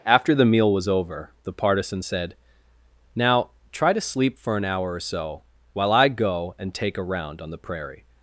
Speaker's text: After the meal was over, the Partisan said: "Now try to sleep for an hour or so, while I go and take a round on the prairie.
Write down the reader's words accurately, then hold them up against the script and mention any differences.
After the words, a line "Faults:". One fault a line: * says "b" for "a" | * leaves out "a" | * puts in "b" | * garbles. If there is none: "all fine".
After the meal was over, the Partisan said: "Now try to sleep for an hour or so, while I go and take a round on the prairie.
Faults:
all fine